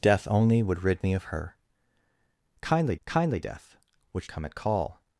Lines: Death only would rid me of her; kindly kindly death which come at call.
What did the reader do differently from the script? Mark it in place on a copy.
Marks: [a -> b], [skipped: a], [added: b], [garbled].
Death only would rid me of her; kindly kindly death which come at call.